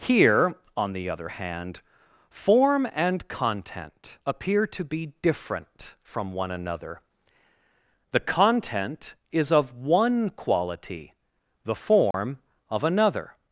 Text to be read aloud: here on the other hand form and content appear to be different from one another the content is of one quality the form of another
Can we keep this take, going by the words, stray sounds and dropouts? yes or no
no